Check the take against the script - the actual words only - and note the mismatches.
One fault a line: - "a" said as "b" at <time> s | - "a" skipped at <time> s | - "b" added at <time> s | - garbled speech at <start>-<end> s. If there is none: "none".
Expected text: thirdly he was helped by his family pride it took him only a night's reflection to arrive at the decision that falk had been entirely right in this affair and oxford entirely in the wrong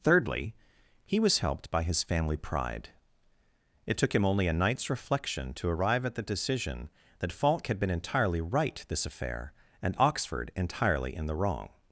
- "in" skipped at 8.8 s